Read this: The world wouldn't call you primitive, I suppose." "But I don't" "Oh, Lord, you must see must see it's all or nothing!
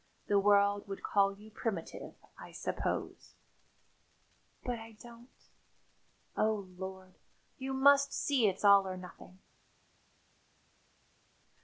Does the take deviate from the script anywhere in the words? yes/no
yes